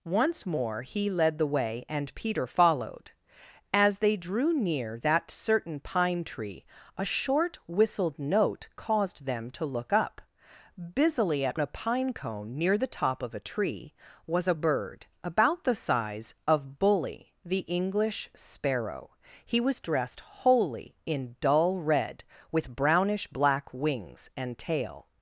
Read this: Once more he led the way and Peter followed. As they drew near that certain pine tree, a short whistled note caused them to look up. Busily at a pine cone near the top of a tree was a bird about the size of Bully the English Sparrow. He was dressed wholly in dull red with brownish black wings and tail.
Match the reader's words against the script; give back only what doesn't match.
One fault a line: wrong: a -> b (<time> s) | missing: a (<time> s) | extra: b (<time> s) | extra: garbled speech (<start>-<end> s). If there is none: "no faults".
no faults